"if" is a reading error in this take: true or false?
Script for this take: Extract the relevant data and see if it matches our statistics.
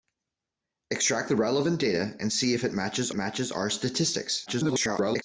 false